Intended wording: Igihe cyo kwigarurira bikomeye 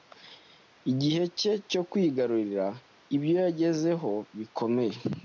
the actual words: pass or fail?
fail